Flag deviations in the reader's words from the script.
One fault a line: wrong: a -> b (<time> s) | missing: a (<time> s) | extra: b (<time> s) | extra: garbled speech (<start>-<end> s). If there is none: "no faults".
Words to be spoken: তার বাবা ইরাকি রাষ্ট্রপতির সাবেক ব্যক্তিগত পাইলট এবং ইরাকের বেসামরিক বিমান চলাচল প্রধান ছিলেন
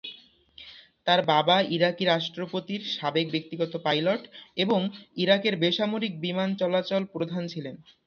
no faults